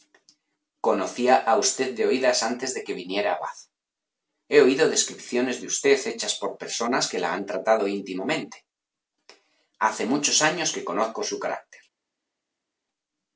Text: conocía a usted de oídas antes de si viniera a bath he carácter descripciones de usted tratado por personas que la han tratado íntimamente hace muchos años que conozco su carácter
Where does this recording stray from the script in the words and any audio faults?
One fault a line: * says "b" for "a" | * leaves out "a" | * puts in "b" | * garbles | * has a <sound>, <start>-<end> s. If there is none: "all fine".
* says "que" for "si"
* says "oído" for "carácter"
* says "hechas" for "tratado"